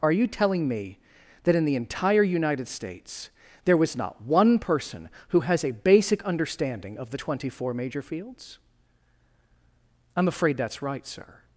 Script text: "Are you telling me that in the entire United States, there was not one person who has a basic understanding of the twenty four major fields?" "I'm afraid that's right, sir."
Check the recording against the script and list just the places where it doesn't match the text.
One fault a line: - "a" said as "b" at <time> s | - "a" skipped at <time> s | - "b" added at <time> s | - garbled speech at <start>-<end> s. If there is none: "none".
none